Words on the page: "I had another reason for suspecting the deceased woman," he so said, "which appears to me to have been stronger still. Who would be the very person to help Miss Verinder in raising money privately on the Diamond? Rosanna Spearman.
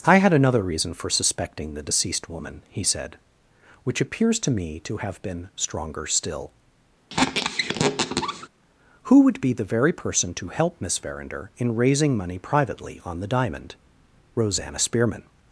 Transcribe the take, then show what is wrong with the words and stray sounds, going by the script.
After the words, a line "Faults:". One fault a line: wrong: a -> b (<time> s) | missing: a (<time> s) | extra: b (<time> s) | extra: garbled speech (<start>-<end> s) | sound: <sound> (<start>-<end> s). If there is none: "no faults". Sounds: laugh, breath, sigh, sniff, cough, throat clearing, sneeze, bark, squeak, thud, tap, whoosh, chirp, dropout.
"I had another reason for suspecting the deceased woman," he said, "which appears to me to have been stronger still. Who would be the very person to help Miss Verinder in raising money privately on the Diamond? Rosanna Spearman.
Faults:
missing: so (2.8 s)
sound: squeak (7.1-8.5 s)